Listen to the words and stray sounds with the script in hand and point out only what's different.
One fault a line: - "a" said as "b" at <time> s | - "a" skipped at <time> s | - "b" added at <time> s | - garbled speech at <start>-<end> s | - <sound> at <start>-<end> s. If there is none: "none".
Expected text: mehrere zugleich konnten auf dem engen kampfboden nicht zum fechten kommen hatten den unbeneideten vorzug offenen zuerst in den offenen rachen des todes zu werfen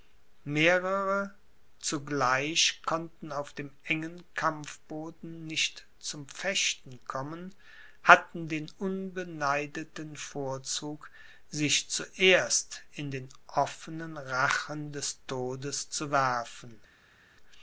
- "offenen" said as "sich" at 11.5 s